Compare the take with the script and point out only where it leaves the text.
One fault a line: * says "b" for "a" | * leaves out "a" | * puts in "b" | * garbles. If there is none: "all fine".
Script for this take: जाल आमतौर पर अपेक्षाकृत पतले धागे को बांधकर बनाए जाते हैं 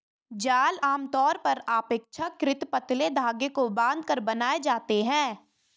all fine